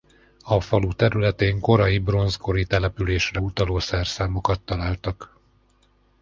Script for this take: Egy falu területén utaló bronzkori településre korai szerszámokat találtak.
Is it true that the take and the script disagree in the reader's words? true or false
true